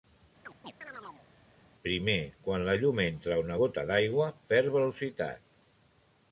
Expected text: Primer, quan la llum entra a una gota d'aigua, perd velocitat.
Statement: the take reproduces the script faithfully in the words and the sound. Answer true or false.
false